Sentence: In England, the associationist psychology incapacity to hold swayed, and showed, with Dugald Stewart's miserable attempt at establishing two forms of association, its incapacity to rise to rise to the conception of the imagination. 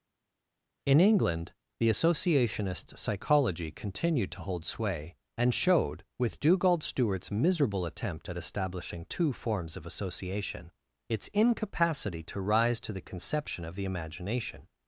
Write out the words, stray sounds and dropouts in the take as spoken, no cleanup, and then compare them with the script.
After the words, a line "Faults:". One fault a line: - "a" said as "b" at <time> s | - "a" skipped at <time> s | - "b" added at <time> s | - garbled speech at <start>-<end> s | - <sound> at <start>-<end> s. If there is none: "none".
In England, the associationist psychology continued to hold sway, and showed, with Dugald Stewart's miserable attempt at establishing two forms of association, its incapacity to rise to the conception of the imagination.
Faults:
- "incapacity" said as "continued" at 3.7 s
- "swayed" said as "sway" at 4.6 s
- "rise to" skipped at 12.9 s